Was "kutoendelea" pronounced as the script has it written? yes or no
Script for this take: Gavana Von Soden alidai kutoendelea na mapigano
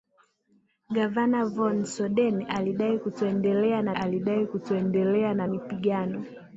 yes